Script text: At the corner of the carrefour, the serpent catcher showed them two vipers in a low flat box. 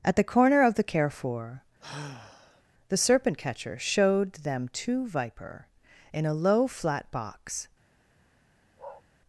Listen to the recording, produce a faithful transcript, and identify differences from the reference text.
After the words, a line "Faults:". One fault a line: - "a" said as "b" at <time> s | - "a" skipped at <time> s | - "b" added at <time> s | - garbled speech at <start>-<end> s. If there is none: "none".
At the corner of the carrefour, the serpent catcher showed them two viper in a low flat box.
Faults:
- "vipers" said as "viper" at 5.1 s